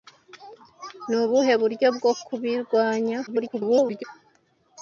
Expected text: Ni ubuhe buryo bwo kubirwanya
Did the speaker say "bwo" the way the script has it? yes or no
yes